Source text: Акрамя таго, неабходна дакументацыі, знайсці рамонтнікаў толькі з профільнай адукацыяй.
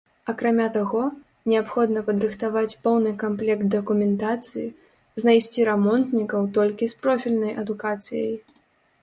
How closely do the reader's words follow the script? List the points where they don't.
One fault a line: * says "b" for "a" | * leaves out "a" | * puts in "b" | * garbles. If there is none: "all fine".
* puts in "падрыхтаваць поўны камплект"